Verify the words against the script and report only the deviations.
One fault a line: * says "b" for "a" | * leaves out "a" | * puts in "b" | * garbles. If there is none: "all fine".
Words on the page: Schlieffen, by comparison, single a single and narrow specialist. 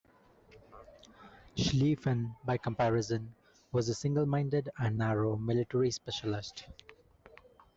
* says "was" for "single"
* puts in "minded"
* puts in "military"